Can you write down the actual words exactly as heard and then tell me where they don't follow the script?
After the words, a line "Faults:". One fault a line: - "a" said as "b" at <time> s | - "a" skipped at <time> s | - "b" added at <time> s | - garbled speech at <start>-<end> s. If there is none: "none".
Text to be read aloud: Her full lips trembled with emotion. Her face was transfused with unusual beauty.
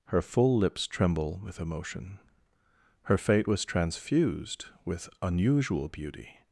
Her full lips tremble with emotion. Her fate was transfused with unusual beauty.
Faults:
- "trembled" said as "tremble" at 0.9 s
- "face" said as "fate" at 3.2 s